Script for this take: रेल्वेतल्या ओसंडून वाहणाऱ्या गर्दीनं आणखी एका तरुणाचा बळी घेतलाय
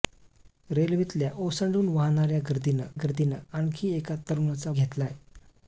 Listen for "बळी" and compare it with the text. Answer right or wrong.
wrong